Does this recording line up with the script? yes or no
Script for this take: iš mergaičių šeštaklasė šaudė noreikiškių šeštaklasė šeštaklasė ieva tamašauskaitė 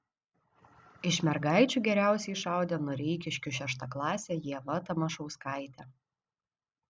no